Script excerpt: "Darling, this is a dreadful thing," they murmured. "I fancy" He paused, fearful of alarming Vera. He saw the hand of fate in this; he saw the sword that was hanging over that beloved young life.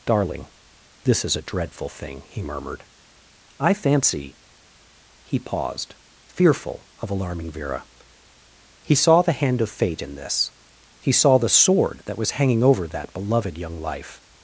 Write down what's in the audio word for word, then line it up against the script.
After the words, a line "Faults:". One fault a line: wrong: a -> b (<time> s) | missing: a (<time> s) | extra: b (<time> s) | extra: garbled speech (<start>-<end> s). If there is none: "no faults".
"Darling, this is a dreadful thing," he murmured. "I fancy" He paused, fearful of alarming Vera. He saw the hand of fate in this; he saw the sword that was hanging over that beloved young life.
Faults:
wrong: they -> he (2.3 s)